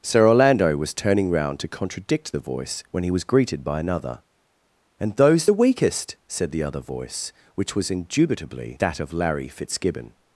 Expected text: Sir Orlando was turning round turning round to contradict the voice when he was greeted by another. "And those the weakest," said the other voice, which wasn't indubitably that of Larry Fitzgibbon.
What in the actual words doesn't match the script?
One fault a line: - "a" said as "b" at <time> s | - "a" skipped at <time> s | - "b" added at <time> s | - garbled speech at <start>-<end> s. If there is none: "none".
- "turning round" skipped at 1.6 s
- "wasn't" said as "was" at 7.7 s